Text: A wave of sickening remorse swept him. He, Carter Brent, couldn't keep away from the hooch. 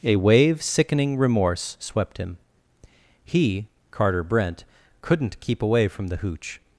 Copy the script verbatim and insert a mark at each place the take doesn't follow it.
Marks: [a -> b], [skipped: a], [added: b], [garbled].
A wave [skipped: of] sickening remorse swept him. He, Carter Brent, couldn't keep away from the hooch.